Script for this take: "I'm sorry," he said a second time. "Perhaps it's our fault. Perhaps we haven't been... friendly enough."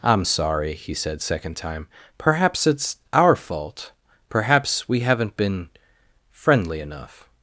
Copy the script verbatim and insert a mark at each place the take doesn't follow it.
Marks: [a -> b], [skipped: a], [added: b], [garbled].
"I'm sorry," he said [skipped: a] second time. "Perhaps it's our fault. Perhaps we haven't been... friendly enough."